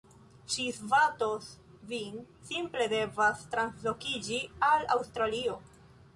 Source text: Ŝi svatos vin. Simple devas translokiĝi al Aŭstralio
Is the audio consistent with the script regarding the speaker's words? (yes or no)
yes